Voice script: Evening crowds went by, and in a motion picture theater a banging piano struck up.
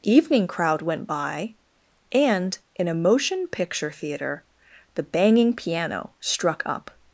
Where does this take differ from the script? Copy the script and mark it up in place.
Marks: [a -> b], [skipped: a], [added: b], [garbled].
Evening [crowds -> crowd] went by, and in a motion picture theater [a -> the] banging piano struck up.